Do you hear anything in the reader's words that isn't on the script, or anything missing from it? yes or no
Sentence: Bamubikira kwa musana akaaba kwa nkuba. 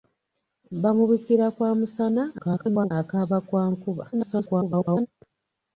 yes